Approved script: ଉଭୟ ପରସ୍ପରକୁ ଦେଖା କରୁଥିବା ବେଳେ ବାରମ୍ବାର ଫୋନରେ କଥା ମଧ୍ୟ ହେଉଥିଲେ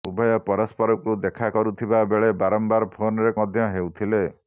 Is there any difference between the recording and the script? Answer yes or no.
yes